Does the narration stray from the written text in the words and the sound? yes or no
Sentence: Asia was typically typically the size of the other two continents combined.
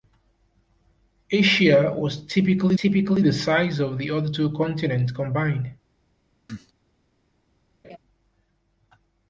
yes